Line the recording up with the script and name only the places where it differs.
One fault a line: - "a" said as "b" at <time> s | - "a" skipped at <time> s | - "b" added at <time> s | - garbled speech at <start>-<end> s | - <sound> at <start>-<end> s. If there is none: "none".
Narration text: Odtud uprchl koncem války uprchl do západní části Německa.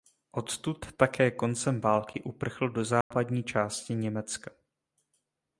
- "uprchl" said as "také" at 1.0 s
- dropout at 3.0-3.1 s